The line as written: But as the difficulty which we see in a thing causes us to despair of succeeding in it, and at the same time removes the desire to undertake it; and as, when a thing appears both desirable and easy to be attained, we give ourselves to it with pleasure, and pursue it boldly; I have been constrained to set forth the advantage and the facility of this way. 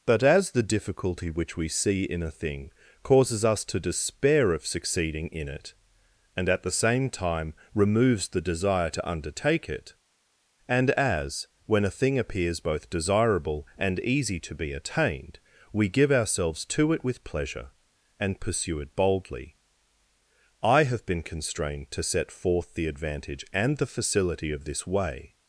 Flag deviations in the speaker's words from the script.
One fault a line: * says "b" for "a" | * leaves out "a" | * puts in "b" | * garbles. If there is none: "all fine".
all fine